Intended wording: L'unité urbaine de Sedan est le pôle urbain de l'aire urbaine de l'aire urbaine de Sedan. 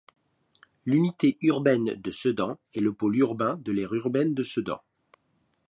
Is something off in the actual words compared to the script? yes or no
yes